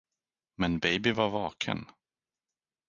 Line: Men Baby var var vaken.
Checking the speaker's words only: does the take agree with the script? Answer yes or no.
no